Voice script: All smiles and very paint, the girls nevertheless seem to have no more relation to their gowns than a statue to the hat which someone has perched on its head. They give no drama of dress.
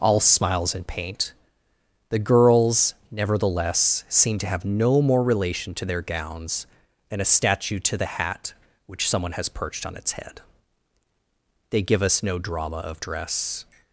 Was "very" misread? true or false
true